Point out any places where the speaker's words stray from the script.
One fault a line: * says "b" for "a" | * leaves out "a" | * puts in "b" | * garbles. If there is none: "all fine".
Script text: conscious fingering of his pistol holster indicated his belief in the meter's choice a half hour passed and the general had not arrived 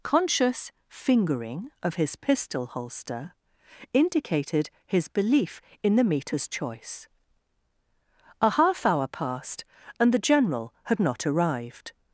all fine